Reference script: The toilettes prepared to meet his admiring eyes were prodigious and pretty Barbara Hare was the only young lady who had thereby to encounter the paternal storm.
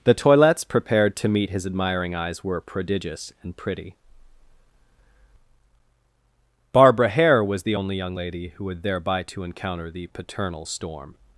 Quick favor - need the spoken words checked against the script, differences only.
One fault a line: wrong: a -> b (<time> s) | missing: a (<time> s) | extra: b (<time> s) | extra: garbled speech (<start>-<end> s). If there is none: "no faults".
no faults